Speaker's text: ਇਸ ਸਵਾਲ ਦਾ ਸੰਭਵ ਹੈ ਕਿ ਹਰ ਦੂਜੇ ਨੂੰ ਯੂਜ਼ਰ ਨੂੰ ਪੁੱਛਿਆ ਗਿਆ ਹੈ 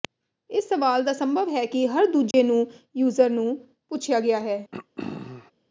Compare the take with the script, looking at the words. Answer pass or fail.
pass